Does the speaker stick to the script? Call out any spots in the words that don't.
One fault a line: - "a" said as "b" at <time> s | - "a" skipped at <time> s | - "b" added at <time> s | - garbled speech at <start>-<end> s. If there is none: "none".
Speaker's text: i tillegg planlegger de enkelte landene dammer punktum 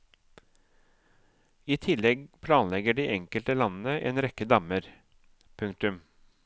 - "en rekke" added at 4.1 s